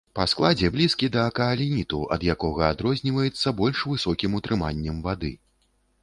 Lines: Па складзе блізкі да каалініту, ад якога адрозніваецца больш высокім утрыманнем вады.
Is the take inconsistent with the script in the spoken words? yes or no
no